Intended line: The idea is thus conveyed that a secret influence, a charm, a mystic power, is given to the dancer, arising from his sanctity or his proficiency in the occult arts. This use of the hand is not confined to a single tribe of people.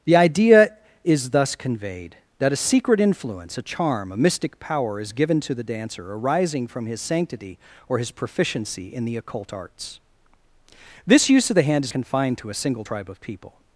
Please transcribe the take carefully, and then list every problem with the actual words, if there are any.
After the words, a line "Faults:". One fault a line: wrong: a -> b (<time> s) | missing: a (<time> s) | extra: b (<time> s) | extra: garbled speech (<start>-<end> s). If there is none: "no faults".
The idea is thus conveyed that a secret influence, a charm, a mystic power, is given to the dancer, arising from his sanctity or his proficiency in the occult arts. This use of the hand is confined to a single tribe of people.
Faults:
missing: not (11.9 s)